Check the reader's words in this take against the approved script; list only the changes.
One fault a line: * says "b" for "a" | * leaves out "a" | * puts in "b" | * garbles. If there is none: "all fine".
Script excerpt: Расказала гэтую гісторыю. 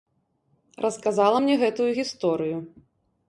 * puts in "мне"